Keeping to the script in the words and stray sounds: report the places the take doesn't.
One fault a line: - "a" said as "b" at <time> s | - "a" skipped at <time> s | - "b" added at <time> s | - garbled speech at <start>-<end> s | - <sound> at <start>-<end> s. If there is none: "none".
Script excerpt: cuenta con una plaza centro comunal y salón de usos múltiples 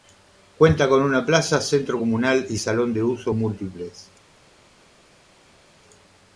none